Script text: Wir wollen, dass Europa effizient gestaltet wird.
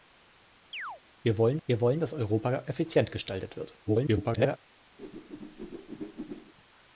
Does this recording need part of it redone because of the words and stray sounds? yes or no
yes